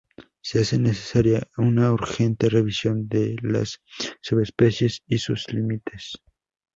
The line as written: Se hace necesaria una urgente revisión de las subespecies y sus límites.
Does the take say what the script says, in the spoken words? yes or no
yes